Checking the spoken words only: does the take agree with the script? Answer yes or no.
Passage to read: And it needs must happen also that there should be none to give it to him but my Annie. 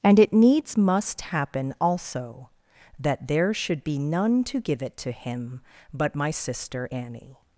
no